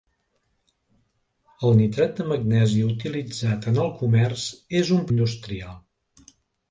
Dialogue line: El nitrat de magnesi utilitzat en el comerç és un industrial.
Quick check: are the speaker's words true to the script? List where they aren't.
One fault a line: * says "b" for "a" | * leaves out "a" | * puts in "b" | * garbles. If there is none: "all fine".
all fine